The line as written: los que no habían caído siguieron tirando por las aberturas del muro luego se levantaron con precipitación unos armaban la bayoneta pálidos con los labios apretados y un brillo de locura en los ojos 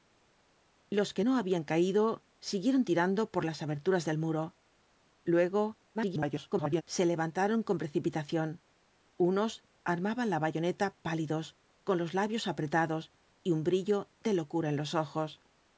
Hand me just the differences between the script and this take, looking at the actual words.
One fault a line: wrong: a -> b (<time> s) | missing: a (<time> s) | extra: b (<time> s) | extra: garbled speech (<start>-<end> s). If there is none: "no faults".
extra: garbled speech (5.9-6.8 s)